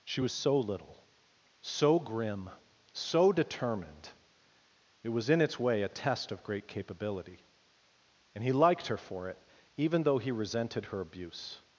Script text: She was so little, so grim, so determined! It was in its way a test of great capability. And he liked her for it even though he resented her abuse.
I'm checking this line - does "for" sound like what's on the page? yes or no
yes